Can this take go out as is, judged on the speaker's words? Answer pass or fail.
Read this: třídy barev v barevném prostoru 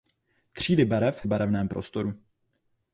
pass